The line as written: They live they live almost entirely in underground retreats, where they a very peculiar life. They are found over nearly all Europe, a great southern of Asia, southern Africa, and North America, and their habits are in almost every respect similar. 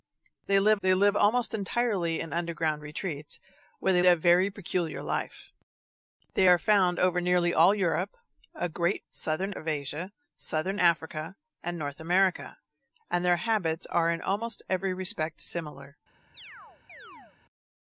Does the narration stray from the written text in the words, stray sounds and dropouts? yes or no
yes